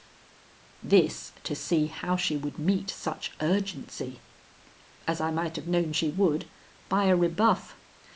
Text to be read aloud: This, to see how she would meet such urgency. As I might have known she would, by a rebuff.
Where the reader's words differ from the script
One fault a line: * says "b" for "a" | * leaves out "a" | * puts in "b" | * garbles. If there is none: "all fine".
all fine